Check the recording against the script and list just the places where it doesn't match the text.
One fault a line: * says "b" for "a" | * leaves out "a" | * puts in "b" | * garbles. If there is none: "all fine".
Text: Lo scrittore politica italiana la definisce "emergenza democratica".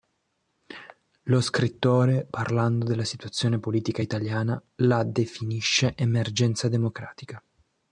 * puts in "parlando della situazione"